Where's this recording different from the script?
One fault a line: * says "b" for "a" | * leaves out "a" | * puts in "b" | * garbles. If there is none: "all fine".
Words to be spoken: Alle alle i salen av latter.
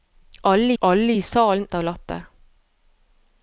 all fine